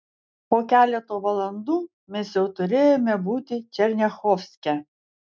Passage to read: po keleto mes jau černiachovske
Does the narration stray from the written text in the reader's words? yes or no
yes